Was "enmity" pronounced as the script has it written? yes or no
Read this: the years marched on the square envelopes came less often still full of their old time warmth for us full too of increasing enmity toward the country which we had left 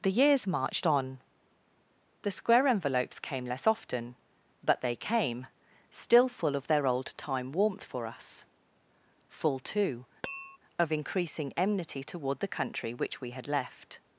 yes